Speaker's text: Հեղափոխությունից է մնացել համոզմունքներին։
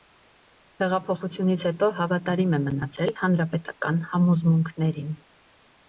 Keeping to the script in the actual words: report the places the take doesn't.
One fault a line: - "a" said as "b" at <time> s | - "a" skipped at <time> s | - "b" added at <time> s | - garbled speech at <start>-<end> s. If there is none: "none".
- "հետո հավատարիմ" added at 1.7 s
- "հանրապետական" added at 3.2 s